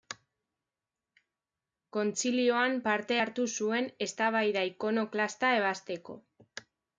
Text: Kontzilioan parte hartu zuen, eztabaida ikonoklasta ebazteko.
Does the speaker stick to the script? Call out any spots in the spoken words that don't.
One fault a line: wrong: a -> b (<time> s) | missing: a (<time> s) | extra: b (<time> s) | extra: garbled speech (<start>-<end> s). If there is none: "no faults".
no faults